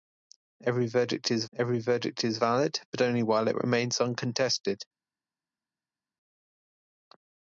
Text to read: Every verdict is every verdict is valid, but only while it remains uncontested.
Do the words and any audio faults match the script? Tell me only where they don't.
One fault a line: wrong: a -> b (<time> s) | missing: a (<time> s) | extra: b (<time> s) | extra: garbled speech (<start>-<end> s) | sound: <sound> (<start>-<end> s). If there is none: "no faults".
no faults